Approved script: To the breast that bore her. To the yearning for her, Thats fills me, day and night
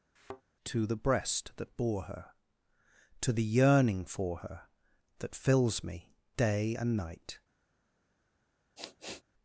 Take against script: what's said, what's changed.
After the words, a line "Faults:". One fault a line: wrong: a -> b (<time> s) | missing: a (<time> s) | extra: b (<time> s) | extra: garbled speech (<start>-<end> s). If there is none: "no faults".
To the breast that bore her. To the yearning for her, That fills me, day and night
Faults:
wrong: Thats -> That (5.2 s)